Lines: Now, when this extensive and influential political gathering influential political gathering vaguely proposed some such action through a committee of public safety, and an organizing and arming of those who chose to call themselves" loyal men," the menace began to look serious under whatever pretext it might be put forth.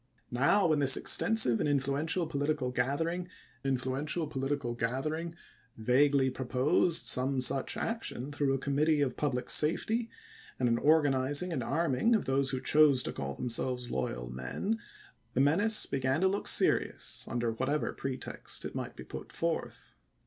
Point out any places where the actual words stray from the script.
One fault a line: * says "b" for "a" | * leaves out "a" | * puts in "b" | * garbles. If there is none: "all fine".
all fine